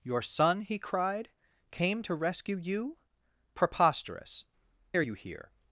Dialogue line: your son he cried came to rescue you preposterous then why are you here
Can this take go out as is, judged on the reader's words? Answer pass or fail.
fail